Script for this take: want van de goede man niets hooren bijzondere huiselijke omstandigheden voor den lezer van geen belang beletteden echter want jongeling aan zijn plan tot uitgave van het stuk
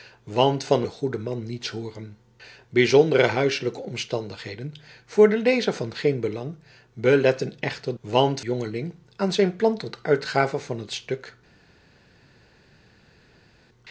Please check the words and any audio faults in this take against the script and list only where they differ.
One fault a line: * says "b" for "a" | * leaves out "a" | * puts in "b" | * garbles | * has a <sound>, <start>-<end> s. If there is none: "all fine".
all fine